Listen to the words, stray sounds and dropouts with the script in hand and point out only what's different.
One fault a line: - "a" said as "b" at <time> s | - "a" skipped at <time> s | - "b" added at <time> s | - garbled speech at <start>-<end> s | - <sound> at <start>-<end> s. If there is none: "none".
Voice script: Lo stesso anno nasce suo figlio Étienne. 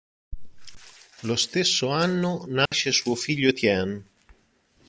- dropout at 2.7-2.7 s